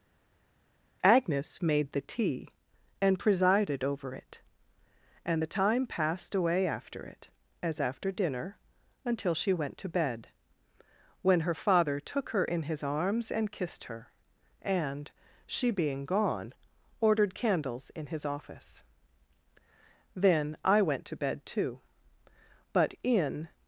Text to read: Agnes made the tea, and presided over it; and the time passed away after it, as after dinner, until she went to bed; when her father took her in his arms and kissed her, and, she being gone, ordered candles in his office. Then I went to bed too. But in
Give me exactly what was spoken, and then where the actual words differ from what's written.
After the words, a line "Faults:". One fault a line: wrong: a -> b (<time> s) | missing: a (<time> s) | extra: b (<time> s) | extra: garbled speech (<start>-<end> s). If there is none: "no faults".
Agnes made the tea, and presided over it; and the time passed away after it, as after dinner, until she went to bed; when her father took her in his arms and kissed her, and, she being gone, ordered candles in his office. Then I went to bed too. But in
Faults:
no faults